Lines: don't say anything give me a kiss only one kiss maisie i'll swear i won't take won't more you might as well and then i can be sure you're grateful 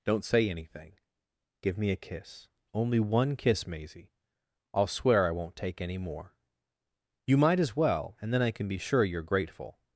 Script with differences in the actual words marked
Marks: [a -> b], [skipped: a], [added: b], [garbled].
don't say anything give me a kiss only one kiss maisie i'll swear i won't take [won't -> any] more you might as well and then i can be sure you're grateful